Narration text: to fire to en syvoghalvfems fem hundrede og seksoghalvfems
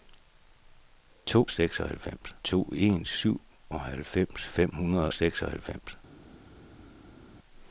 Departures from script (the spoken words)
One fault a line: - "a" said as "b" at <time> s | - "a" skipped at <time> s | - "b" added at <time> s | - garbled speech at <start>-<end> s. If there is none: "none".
- "fire" said as "seksoghalvfems" at 1.5 s
- "og" skipped at 5.1 s